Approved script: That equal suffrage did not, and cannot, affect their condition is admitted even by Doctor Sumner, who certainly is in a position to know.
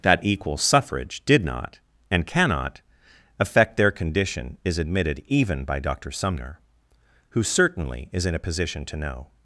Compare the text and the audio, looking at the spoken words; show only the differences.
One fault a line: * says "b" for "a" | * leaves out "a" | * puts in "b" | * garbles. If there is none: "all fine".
all fine